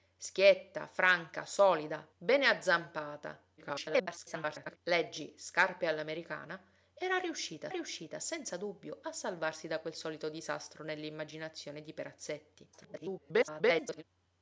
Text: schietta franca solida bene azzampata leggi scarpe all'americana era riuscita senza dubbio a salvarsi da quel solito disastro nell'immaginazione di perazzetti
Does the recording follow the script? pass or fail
fail